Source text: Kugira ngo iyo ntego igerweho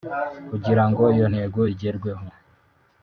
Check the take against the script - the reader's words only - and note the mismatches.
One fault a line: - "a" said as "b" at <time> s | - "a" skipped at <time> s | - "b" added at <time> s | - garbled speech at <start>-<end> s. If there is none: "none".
none